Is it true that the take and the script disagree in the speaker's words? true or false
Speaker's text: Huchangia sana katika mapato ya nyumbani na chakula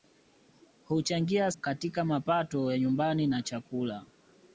true